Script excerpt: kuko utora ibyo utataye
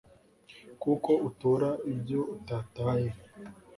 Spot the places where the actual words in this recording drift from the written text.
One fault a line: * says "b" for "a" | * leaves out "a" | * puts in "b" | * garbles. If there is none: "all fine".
all fine